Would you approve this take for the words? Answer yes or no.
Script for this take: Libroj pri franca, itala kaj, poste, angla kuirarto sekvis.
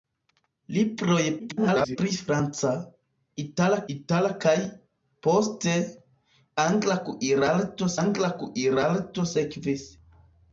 no